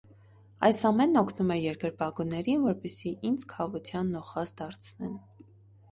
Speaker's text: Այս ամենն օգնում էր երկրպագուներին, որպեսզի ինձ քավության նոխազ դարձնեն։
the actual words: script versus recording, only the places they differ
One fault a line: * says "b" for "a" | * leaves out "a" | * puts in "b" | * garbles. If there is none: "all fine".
all fine